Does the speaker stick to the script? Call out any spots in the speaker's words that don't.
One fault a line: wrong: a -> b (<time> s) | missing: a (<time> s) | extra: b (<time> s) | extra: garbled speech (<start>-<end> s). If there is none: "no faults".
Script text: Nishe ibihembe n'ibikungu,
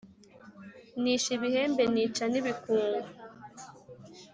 extra: nica (1.9 s)